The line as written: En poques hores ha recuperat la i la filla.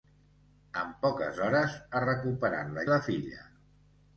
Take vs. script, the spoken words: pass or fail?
pass